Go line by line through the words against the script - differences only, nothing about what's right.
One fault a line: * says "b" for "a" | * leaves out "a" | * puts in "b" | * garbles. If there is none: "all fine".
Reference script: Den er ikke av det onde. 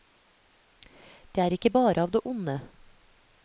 * says "Det" for "Den"
* puts in "bare"